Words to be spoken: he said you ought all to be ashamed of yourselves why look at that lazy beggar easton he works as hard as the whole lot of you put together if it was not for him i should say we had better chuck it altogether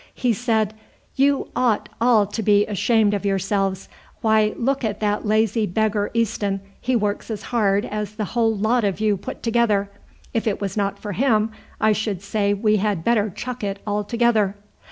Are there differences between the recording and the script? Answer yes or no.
no